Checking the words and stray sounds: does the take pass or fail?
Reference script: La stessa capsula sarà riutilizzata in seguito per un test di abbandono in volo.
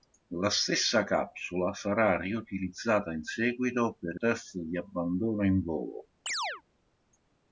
fail